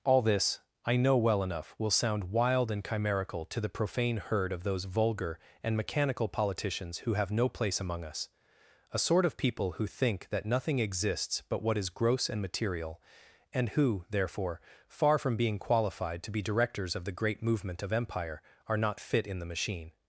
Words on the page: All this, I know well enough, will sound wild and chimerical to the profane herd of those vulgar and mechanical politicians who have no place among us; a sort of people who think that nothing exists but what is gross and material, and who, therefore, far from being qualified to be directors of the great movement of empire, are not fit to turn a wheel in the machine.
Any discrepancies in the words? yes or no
yes